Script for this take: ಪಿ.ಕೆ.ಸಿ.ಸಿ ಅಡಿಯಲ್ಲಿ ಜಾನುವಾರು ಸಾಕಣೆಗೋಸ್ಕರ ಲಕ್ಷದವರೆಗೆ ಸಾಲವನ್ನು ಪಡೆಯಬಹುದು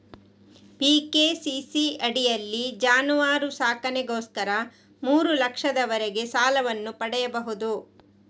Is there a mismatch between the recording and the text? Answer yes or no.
yes